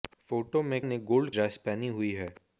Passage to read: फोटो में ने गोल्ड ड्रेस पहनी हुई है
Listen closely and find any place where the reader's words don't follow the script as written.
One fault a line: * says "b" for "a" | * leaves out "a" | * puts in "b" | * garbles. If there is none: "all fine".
all fine